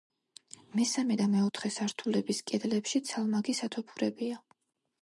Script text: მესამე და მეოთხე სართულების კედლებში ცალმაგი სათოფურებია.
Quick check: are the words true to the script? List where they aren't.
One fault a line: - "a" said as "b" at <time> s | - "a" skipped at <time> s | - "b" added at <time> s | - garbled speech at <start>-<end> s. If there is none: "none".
none